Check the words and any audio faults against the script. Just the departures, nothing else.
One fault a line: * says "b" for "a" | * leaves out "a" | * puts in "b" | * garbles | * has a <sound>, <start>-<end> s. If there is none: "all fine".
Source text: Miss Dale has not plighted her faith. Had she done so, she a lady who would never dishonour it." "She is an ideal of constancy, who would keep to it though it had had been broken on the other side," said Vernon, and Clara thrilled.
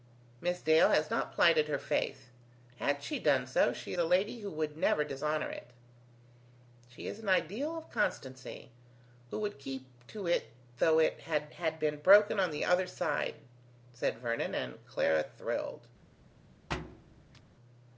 * has a thud, 16.7-17.4 s